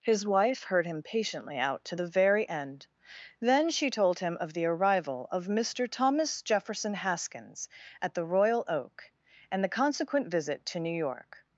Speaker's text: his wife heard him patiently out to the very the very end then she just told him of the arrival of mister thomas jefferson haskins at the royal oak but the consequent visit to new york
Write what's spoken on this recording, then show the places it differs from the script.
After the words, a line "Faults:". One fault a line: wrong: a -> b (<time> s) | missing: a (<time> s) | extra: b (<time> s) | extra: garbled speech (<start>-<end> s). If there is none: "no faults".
his wife heard him patiently out to the very end then she told him of the arrival of mister thomas jefferson haskins at the royal oak and the consequent visit to new york
Faults:
missing: the very (2.5 s)
missing: just (3.9 s)
wrong: but -> and (9.5 s)